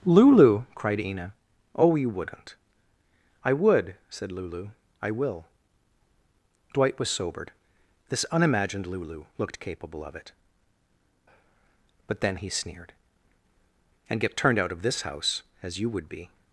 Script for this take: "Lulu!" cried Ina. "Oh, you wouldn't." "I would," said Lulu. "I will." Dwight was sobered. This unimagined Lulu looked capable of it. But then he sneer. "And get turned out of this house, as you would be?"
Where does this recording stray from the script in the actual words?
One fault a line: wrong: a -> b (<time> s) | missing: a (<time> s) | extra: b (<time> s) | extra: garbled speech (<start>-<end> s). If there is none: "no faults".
wrong: sneer -> sneered (12.5 s)